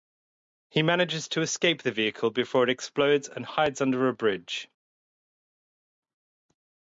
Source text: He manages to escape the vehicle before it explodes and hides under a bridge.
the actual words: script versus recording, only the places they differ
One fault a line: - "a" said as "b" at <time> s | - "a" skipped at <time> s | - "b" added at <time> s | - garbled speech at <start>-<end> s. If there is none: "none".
none